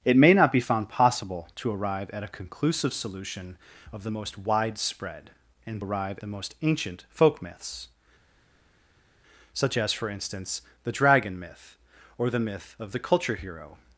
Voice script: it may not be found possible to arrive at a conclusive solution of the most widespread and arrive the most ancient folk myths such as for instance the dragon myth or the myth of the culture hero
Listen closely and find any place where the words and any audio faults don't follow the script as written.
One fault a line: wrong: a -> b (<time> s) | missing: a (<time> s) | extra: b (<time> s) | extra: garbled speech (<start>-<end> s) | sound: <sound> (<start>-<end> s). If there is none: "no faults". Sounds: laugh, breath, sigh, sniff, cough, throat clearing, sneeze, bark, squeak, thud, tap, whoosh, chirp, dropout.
no faults